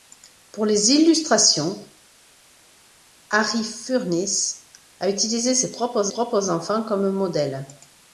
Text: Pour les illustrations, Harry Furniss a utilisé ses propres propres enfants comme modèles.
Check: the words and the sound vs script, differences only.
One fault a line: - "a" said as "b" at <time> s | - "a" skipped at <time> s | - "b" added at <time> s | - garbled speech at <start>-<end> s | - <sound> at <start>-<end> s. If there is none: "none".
none